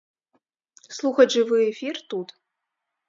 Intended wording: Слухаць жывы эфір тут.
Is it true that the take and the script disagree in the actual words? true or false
false